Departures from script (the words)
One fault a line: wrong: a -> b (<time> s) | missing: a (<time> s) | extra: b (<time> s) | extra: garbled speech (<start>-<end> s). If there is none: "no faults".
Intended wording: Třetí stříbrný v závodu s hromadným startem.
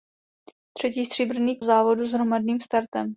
no faults